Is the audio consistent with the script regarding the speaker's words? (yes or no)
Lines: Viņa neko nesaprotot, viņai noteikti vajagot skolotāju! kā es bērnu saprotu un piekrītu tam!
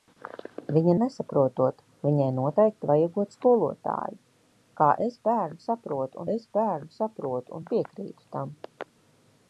no